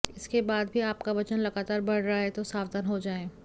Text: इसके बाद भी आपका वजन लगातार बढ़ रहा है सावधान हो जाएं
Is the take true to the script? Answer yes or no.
no